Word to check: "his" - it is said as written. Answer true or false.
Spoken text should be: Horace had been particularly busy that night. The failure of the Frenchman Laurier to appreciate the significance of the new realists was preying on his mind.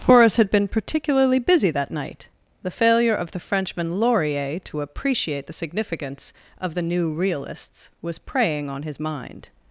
true